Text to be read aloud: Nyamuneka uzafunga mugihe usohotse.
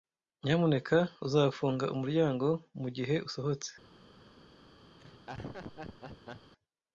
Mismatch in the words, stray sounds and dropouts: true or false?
true